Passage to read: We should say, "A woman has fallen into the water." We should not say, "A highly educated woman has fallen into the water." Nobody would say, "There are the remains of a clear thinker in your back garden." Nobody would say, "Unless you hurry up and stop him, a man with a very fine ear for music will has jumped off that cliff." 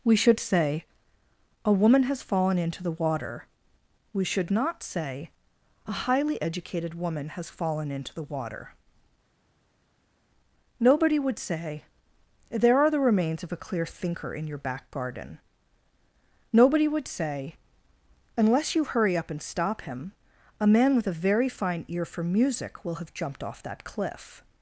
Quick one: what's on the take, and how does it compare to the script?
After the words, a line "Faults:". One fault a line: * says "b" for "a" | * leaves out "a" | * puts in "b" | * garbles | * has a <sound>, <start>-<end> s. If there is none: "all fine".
We should say, "A woman has fallen into the water." We should not say, "A highly educated woman has fallen into the water." Nobody would say, "There are the remains of a clear thinker in your back garden." Nobody would say, "Unless you hurry up and stop him, a man with a very fine ear for music will have jumped off that cliff."
Faults:
* says "have" for "has"